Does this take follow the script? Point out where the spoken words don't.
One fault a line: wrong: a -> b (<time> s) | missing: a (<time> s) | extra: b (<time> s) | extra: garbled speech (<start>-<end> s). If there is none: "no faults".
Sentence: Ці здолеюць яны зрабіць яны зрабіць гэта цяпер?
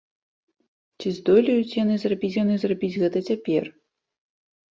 no faults